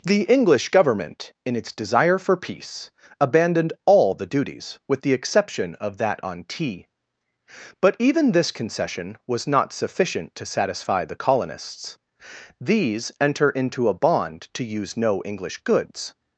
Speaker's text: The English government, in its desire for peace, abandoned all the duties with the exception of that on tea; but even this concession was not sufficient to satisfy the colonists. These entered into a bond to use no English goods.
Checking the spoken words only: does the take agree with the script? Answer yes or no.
no